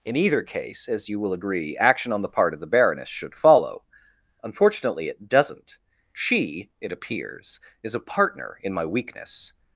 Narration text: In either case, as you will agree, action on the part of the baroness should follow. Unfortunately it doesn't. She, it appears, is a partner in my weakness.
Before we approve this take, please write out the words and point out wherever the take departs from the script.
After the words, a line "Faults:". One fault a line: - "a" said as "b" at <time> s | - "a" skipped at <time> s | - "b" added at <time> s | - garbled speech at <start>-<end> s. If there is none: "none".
In either case, as you will agree, action on the part of the baroness should follow. Unfortunately it doesn't. She, it appears, is a partner in my weakness.
Faults:
none